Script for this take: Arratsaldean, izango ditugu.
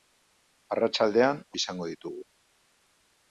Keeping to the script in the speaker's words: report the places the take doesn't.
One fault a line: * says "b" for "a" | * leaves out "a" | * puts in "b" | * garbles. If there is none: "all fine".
all fine